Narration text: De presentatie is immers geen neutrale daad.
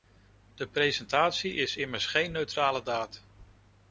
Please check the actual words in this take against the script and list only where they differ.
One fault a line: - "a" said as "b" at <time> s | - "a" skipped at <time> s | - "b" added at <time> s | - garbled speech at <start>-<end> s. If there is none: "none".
none